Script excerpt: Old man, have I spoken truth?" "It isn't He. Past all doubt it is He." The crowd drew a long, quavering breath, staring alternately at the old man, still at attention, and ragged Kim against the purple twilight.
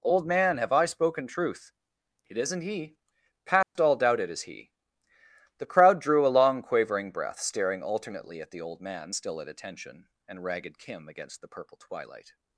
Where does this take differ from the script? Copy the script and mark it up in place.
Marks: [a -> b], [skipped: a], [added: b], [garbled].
Old man, have I spoken truth?" "It isn't He. Past all doubt it is He." The crowd drew a long, quavering breath, staring alternately at the old man, still at attention, and ragged Kim against the purple twilight.